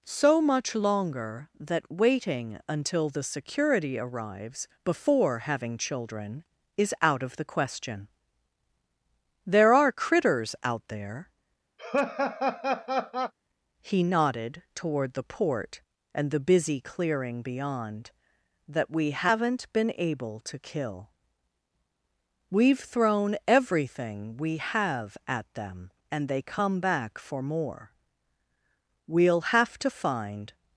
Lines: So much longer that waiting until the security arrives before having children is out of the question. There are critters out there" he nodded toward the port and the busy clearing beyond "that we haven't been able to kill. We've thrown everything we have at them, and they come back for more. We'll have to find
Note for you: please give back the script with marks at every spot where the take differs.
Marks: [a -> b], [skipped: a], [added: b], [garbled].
So much longer that waiting until the security arrives before having children is out of the question. There are critters out there" he nodded toward the port and the busy clearing beyond "that we haven't been able to kill. We've thrown everything we have at them, and they come back for more. We'll have to find